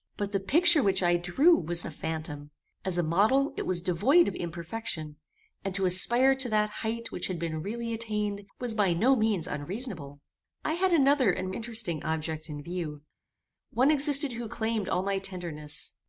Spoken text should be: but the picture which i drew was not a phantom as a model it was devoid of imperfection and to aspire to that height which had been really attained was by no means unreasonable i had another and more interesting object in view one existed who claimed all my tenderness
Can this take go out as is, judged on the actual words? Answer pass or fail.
fail